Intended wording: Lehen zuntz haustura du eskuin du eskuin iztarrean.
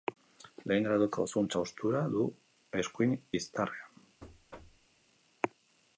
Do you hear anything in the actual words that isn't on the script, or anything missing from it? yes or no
yes